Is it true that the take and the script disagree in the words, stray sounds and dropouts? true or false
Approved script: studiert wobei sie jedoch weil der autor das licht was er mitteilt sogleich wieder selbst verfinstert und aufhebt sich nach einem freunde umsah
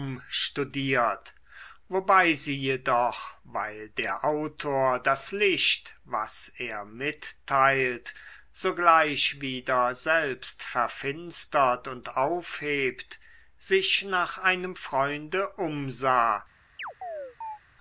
true